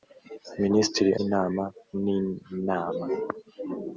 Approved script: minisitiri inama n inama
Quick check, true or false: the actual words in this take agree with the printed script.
true